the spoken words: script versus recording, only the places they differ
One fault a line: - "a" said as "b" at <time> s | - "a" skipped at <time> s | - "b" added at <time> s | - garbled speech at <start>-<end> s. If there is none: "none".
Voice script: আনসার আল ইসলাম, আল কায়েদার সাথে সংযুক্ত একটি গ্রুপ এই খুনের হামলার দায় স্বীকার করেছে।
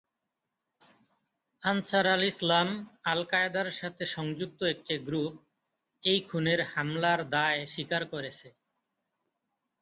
none